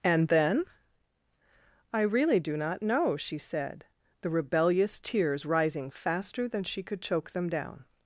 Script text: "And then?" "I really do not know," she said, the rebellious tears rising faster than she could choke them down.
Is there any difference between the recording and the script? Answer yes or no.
no